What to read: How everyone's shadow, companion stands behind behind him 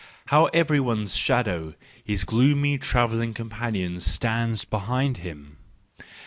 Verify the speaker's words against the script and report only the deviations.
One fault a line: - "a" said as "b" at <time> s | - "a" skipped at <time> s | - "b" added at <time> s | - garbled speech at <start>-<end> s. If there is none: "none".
- "his gloomy travelling" added at 2.0 s
- "behind" skipped at 5.2 s